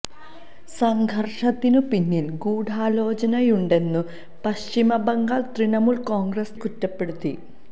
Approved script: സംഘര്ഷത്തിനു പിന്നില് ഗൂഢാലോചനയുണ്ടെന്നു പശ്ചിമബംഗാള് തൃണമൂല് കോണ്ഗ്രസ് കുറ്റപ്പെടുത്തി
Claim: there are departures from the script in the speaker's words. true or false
false